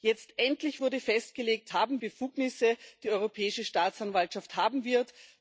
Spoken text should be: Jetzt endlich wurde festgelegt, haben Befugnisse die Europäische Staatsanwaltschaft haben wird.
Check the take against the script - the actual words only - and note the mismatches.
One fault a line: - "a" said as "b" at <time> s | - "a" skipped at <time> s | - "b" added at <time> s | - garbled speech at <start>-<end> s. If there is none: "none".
none